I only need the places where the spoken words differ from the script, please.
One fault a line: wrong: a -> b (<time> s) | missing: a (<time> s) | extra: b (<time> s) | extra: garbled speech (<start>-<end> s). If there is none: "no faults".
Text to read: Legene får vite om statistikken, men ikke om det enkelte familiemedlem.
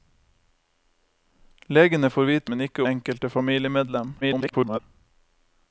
missing: om statistikken (2.5 s)
missing: om det (2.8 s)
extra: garbled speech (4.2-4.8 s)